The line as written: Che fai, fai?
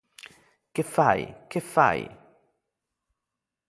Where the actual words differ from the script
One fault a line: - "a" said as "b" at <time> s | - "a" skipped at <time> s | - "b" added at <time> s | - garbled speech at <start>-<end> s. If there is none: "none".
- "che" added at 1.5 s